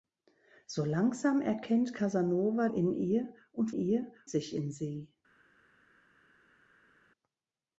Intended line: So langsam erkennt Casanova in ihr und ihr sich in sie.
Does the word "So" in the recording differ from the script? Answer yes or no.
no